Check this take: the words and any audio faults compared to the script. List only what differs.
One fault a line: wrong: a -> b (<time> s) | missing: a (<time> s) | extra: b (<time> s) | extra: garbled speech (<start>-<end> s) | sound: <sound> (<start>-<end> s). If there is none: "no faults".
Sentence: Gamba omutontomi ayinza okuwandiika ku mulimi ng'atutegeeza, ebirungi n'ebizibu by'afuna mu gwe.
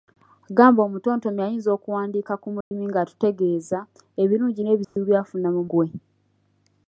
sound: dropout (2.6-2.7 s)
sound: dropout (4.8-5.0 s)